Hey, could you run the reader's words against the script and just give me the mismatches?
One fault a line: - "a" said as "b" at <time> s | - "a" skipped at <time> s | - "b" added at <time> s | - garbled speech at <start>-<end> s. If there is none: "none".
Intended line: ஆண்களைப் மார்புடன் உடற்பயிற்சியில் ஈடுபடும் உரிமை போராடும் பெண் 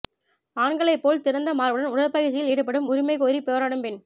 - "போல் திறந்த" added at 1.0 s
- "கோரி" added at 3.2 s